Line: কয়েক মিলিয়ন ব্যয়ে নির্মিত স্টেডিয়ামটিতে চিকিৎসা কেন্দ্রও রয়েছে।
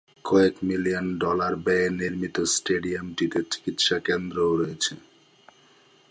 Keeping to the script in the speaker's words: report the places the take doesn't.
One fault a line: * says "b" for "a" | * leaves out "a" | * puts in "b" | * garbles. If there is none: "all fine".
* puts in "ডলার"